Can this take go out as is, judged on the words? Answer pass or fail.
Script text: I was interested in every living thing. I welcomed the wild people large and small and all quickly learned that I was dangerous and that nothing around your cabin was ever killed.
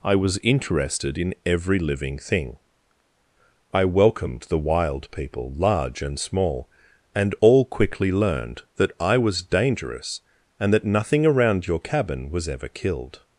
pass